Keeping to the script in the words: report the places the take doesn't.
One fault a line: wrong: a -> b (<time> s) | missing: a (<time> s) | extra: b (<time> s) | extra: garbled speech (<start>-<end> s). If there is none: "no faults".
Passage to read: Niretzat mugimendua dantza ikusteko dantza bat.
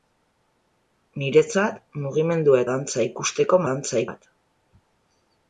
no faults